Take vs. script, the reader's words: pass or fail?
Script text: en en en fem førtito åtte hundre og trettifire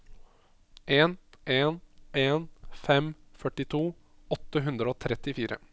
pass